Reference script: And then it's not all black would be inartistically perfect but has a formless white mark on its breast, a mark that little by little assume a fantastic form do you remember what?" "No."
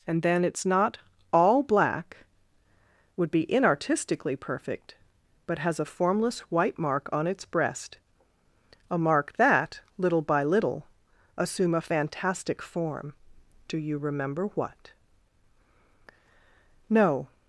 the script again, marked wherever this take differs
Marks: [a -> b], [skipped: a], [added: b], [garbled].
And then it's not all black would be inartistically perfect but has a formless white mark on its breast, a mark that little by little assume a fantastic form do you remember what?" "No."